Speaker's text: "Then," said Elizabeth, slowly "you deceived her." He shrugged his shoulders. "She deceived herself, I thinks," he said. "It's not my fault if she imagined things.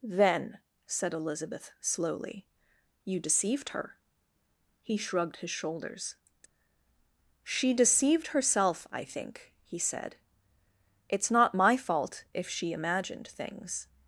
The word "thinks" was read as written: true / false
false